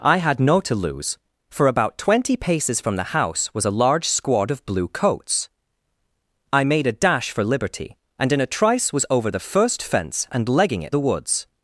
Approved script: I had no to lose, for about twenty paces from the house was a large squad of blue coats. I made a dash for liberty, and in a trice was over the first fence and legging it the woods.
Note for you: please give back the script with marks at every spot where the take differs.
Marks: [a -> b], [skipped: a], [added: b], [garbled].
I had no to lose, for about twenty paces from the house was a large squad of blue coats. I made a dash for liberty, and in a trice was over the first fence and legging it the woods.